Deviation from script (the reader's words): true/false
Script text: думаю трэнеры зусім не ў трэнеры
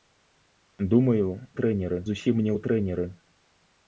false